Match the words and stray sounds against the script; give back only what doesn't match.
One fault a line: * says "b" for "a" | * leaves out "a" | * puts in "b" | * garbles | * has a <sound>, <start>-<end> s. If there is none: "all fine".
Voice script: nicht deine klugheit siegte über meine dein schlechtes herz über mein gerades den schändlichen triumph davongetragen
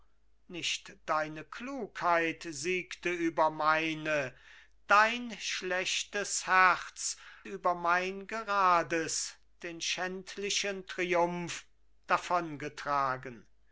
all fine